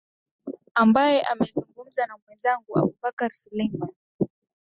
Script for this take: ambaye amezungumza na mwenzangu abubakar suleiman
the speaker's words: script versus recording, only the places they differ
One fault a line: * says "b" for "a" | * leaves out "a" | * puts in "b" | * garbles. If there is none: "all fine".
all fine